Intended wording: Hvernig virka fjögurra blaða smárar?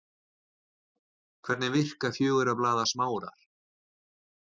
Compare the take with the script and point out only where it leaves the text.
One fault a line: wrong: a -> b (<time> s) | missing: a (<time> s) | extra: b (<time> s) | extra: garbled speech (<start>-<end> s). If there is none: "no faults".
no faults